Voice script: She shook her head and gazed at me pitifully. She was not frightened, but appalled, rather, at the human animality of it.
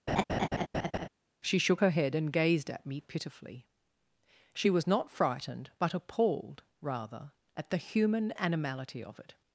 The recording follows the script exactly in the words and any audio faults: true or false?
false